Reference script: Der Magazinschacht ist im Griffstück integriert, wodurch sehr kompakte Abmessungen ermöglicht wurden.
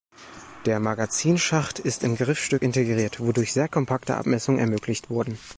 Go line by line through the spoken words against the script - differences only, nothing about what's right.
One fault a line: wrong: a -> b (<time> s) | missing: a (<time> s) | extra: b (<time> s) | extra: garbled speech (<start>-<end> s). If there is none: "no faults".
no faults